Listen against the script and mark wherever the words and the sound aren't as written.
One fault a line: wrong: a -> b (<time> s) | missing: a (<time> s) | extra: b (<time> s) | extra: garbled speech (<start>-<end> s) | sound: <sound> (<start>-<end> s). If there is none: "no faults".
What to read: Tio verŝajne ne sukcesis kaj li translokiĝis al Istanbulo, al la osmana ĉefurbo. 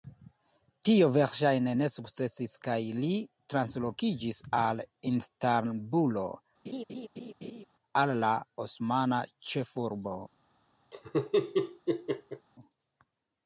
sound: laugh (6.6-7.6 s)
sound: laugh (10.9-12.5 s)